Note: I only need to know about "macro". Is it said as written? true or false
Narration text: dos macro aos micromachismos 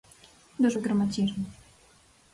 false